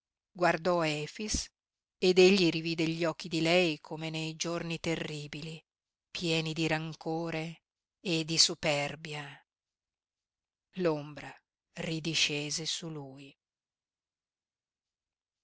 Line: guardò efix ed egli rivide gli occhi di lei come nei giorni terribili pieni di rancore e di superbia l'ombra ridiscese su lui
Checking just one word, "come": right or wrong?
right